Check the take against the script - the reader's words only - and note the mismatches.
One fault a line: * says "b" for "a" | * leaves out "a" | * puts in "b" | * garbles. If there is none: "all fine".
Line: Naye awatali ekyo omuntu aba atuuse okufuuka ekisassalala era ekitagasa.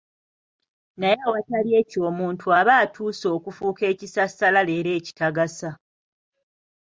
all fine